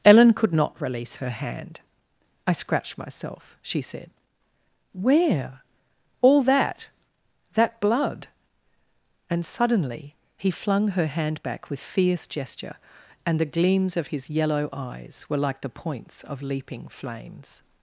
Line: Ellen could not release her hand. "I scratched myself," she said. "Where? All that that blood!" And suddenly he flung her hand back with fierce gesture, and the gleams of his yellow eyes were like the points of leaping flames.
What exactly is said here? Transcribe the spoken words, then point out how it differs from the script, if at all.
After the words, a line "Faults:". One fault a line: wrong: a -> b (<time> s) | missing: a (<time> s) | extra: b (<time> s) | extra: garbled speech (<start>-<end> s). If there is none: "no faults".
Ellen could not release her hand. "I scratched myself," she said. "Where? All that that blood!" And suddenly he flung her hand back with fierce gesture, and the gleams of his yellow eyes were like the points of leaping flames.
Faults:
no faults